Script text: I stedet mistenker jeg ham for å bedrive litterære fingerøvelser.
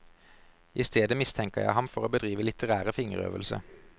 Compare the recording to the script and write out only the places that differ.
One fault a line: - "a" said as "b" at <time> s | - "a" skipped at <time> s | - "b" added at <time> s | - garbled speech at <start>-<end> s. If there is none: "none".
none